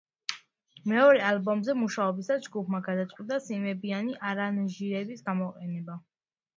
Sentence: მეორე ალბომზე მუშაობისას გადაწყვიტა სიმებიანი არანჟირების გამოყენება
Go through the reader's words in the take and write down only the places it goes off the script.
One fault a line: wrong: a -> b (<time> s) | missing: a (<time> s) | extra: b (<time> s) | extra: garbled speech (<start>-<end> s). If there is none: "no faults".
extra: ჯგუფმა (2.5 s)